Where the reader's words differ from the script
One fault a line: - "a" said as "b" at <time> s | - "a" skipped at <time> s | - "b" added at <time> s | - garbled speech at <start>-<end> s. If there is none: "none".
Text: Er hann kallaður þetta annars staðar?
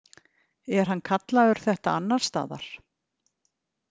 none